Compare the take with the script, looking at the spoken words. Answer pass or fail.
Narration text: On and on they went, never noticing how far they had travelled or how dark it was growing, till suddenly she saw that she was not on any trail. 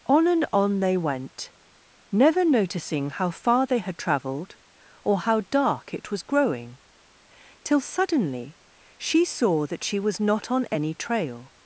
pass